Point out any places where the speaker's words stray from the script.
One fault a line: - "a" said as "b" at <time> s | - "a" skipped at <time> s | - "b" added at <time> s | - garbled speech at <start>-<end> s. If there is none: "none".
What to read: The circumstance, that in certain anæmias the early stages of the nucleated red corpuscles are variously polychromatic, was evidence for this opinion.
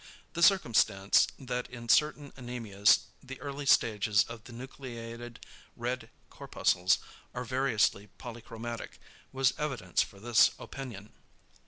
none